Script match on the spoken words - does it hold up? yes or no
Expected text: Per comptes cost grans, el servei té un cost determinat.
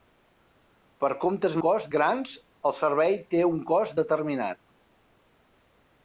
yes